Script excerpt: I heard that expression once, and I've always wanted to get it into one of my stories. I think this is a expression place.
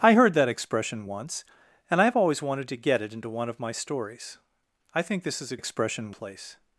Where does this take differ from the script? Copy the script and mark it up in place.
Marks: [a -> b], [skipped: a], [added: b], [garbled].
I heard that expression once, and I've always wanted to get it into one of my stories. I think this is a expression place.